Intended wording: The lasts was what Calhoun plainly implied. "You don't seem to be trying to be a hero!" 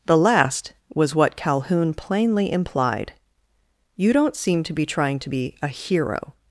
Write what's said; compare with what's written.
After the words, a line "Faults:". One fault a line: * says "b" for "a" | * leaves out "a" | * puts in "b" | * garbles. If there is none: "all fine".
The last was what Calhoun plainly implied. "You don't seem to be trying to be a hero!"
Faults:
* says "last" for "lasts"